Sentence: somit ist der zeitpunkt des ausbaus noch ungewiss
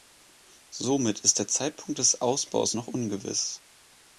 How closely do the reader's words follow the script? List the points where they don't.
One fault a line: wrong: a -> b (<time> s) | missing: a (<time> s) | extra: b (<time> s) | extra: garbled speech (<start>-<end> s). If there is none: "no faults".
no faults